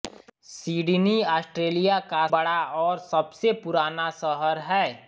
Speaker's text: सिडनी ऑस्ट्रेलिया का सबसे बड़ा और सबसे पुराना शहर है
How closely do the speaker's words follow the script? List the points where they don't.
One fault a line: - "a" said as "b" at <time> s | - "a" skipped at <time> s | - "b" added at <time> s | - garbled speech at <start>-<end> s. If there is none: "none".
- "सबसे" skipped at 2.2 s